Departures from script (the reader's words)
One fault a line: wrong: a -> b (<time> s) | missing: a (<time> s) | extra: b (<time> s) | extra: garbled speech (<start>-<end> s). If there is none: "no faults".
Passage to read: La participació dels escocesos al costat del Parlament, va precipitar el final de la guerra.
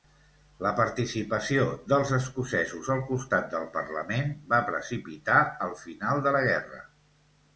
no faults